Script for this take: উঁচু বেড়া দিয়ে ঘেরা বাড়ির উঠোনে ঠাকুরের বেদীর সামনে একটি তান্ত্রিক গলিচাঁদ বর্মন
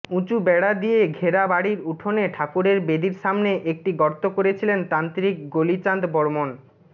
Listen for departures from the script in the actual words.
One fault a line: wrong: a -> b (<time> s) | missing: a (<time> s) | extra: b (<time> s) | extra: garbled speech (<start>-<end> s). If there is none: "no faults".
extra: গর্ত করেছিলেন (4.0 s)